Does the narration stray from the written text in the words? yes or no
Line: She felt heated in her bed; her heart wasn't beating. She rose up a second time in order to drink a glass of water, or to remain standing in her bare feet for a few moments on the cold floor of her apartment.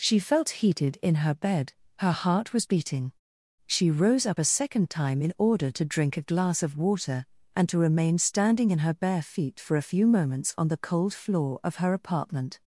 yes